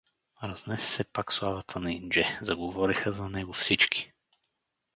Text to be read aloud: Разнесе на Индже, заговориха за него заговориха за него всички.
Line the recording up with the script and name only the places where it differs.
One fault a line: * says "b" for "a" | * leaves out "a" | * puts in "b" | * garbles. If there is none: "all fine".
* says "се пак славата на Индже" for "на Индже заговориха за него"